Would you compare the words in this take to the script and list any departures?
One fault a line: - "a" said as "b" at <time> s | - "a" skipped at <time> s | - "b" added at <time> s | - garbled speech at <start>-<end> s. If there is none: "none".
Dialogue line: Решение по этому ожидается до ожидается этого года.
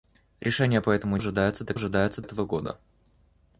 none